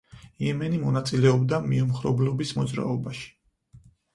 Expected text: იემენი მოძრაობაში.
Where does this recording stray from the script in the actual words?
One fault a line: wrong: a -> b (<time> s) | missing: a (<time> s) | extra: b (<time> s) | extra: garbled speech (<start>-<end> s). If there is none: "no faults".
extra: მონაწილეობდა მიუმხრობლობის (0.8 s)